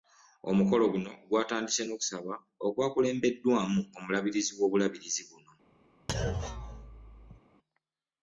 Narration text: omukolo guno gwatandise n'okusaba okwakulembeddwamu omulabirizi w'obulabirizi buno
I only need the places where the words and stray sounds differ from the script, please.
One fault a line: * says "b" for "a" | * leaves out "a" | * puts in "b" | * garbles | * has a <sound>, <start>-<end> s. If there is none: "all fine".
* has a thud, 6.1-7.4 s